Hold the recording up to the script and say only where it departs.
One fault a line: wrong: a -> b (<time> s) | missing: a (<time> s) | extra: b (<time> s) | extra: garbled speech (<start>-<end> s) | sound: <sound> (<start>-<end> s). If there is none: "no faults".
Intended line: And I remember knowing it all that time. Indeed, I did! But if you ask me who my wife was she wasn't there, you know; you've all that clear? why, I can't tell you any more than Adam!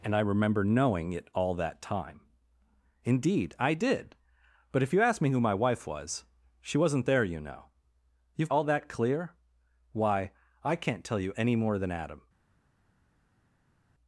no faults